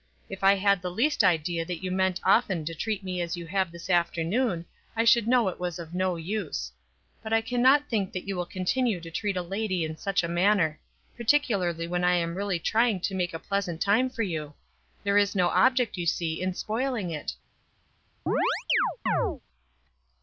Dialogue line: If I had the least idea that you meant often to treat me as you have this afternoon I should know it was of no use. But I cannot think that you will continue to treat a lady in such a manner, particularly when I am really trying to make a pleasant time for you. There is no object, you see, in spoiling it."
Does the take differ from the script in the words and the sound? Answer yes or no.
yes